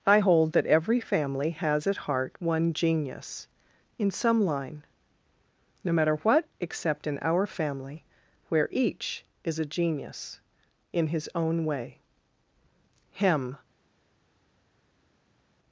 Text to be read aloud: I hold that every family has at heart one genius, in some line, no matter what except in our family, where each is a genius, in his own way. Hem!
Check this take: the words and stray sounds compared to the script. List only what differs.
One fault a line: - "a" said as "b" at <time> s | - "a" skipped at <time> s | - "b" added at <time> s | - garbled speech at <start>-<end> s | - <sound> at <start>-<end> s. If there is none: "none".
none